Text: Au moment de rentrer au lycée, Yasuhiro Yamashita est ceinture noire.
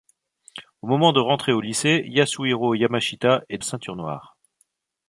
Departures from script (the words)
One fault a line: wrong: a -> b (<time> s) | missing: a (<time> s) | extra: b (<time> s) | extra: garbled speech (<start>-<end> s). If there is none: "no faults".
no faults